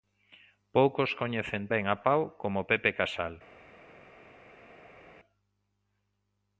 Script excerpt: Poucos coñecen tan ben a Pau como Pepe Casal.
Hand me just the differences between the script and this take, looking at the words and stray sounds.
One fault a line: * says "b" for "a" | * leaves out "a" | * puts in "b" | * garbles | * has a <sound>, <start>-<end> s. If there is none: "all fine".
* leaves out "tan"